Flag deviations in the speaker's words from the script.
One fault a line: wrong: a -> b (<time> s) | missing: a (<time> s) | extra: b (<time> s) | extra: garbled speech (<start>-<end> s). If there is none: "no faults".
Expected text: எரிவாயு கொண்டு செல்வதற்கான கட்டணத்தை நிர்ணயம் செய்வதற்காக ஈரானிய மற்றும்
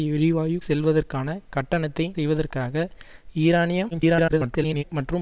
missing: கொண்டு (0.6 s)
missing: நிர்ணயம் (2.1 s)
extra: garbled speech (3.9-4.8 s)